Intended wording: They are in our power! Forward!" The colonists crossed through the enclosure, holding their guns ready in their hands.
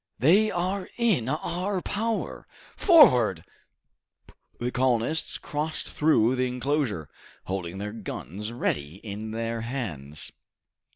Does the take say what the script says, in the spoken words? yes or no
yes